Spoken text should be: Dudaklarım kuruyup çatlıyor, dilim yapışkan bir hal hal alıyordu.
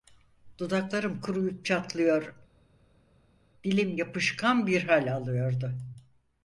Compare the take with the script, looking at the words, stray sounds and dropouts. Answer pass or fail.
fail